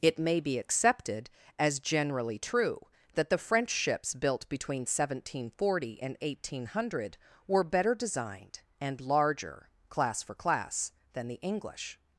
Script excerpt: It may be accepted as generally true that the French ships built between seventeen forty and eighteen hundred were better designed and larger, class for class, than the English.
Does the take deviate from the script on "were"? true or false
false